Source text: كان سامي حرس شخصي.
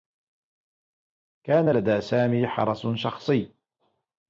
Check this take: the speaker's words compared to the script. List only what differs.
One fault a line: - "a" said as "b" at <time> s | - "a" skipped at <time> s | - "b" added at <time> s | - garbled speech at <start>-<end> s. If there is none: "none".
- "لدى" added at 1.7 s